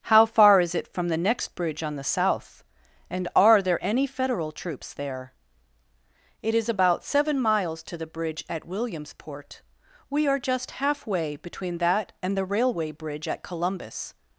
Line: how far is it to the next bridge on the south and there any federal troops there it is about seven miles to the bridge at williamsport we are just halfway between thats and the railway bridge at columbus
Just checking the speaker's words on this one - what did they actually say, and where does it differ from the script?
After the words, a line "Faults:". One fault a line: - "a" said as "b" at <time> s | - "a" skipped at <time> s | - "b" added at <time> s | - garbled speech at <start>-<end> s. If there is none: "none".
how far is it from the next bridge on the south and are there any federal troops there it is about seven miles to the bridge at williamsport we are just halfway between that and the railway bridge at columbus
Faults:
- "to" said as "from" at 0.9 s
- "are" added at 3.4 s
- "thats" said as "that" at 11.8 s